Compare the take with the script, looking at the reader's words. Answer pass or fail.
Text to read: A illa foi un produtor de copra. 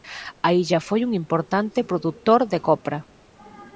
fail